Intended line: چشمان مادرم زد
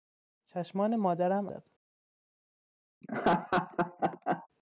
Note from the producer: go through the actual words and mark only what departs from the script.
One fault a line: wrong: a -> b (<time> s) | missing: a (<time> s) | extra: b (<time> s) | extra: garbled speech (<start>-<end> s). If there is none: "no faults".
no faults